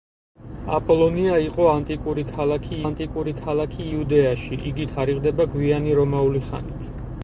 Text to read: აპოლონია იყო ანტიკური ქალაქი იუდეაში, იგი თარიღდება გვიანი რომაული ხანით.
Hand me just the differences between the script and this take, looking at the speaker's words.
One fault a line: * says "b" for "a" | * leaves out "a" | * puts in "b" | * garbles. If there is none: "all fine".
* puts in "ანტიკური ქალაქი"